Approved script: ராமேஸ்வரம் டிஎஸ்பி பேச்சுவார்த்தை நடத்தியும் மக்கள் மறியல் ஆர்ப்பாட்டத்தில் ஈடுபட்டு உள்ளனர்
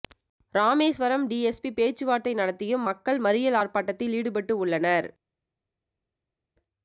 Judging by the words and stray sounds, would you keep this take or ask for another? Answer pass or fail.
pass